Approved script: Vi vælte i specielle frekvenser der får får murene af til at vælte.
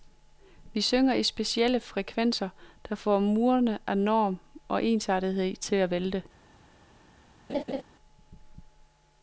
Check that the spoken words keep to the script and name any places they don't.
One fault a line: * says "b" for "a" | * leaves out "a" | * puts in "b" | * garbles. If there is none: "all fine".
* says "synger" for "vælte"
* leaves out "får"
* puts in "norm og ensartethed"